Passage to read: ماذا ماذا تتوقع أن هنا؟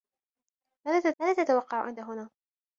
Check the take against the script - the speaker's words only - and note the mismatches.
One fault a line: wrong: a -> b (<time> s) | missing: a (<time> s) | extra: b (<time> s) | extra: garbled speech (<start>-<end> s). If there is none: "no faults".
no faults